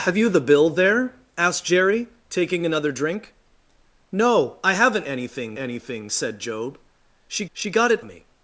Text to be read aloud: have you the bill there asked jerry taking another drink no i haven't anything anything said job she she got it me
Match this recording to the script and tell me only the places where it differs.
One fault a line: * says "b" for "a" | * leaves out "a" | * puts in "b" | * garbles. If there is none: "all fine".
all fine